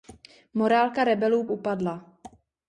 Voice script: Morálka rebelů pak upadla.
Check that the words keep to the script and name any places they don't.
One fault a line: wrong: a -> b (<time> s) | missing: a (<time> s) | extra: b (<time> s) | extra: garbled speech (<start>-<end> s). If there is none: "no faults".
missing: pak (1.5 s)